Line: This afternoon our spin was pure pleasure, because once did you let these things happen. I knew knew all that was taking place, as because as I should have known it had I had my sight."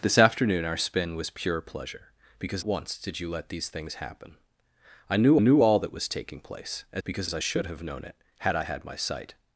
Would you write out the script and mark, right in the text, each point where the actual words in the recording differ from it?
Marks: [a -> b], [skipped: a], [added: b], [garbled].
This afternoon our spin was pure pleasure, because once did you let these things happen. I knew knew all that was taking place, as because as I should have known it had I had my sight."